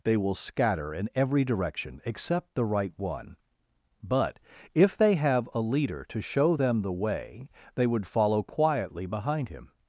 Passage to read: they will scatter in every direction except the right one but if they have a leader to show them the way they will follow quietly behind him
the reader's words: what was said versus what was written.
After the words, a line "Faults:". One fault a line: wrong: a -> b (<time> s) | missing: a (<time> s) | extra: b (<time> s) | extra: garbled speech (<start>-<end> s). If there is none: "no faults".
they will scatter in every direction except the right one but if they have a leader to show them the way they would follow quietly behind him
Faults:
wrong: will -> would (7.9 s)